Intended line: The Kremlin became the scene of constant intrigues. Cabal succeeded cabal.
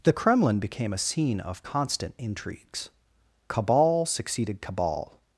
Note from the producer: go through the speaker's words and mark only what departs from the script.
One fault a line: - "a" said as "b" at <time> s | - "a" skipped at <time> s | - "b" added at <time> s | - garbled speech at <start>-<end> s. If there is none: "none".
- "the" said as "a" at 0.9 s